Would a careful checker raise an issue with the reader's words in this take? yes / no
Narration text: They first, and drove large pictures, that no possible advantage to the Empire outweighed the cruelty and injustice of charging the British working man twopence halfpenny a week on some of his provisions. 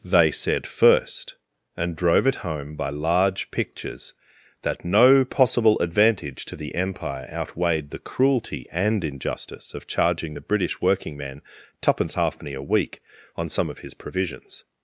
yes